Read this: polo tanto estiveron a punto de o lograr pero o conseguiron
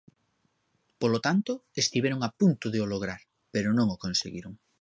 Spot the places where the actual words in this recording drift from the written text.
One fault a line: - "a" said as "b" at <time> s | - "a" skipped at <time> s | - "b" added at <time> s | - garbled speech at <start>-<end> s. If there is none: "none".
- "non" added at 3.8 s